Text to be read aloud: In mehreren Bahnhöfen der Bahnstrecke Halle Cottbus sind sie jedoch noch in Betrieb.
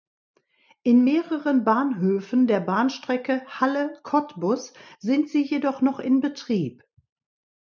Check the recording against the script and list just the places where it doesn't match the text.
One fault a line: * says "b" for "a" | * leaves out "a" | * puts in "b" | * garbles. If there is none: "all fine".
all fine